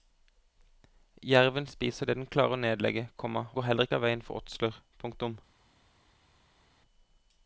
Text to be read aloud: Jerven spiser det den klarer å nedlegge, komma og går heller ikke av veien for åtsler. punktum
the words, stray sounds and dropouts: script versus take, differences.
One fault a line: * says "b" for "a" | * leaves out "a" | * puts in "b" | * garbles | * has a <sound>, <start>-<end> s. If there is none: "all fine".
* leaves out "og"